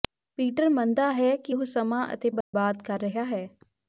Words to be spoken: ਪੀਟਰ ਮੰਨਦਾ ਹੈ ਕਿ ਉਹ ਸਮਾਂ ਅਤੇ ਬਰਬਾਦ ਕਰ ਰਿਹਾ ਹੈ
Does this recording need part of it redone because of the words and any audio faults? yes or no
yes